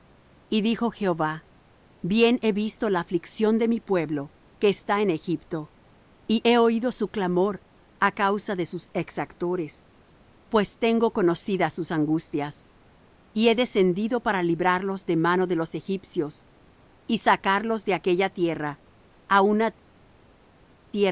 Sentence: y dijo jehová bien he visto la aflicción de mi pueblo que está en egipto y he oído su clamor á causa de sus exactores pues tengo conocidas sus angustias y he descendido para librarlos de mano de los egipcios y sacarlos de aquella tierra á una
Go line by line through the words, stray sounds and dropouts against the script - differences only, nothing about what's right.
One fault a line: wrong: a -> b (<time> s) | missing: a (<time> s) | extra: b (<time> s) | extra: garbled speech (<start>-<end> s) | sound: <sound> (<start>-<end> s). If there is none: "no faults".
no faults